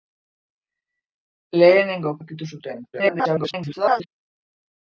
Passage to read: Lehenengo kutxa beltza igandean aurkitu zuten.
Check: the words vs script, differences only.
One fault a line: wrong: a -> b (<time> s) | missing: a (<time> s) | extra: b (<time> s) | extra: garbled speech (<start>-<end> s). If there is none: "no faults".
missing: kutxa beltza igandean (2.1 s)
extra: garbled speech (2.9-4.1 s)